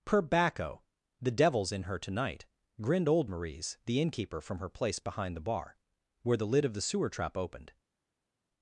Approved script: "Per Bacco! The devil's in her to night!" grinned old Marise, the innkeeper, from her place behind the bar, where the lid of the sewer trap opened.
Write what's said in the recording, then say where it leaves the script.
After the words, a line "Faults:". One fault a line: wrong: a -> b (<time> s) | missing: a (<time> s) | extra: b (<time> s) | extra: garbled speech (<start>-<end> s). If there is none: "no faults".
"Per Bacco! The devil's in her to night!" grinned old Marise, the innkeeper, from her place behind the bar, where the lid of the sewer trap opened.
Faults:
no faults